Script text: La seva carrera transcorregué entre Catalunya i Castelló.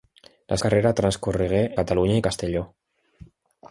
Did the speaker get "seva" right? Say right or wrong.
wrong